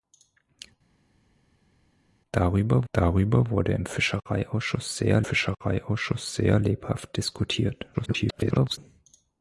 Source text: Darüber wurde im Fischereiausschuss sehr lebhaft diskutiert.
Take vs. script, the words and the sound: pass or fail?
fail